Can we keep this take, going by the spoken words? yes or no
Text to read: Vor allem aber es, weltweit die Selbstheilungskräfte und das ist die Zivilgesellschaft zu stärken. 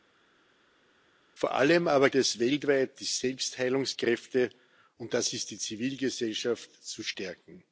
yes